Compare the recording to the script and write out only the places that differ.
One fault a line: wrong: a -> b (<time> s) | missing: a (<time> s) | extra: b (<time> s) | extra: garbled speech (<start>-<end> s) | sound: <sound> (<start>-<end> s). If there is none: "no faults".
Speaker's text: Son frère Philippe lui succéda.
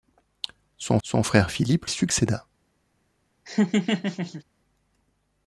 extra: son (1.0 s)
missing: lui (1.8 s)
sound: laugh (3.5-4.4 s)